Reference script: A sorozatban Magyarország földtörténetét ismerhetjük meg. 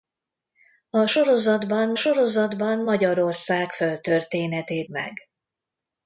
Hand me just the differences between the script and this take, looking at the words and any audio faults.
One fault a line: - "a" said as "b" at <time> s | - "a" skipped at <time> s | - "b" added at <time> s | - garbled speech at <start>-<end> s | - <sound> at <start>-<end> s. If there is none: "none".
- "sorozatban" added at 1.9 s
- "ismerhetjük" skipped at 4.9 s